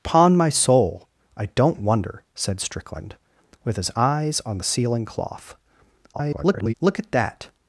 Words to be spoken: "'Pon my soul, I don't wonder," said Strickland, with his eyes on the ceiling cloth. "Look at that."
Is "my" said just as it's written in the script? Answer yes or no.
yes